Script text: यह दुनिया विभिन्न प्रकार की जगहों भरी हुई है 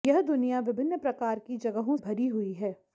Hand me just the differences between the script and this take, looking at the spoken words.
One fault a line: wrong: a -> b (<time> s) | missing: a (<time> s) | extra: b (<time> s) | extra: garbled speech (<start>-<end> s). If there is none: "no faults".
no faults